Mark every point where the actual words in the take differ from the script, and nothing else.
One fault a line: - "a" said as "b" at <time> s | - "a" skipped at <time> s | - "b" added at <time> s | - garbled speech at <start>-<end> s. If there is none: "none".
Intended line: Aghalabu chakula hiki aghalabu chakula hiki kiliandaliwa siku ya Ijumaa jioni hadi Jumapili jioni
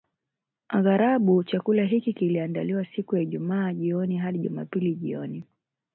- "aghalabu chakula hiki" skipped at 2.1 s